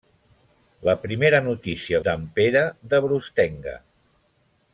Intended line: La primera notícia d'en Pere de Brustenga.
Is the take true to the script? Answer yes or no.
yes